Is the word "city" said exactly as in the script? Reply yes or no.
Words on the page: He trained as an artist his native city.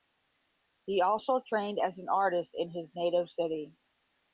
yes